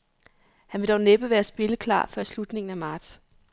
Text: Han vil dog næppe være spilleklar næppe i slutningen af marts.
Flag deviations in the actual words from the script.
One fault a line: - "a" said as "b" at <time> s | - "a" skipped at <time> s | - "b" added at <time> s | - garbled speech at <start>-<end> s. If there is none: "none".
- "næppe" said as "før" at 2.1 s